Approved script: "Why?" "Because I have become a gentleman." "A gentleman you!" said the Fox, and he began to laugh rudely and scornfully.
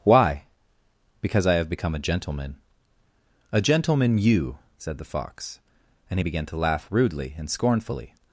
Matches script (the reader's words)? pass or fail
pass